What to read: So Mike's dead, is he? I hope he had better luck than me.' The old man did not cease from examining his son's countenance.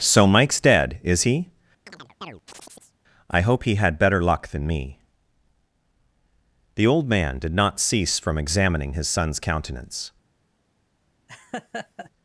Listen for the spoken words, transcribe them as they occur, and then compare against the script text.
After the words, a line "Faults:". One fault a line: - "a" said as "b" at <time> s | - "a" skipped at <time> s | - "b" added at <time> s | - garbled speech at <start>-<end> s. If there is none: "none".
So Mike's dead, is he? I hope he had better luck than me.' The old man did not cease from examining his son's countenance.
Faults:
none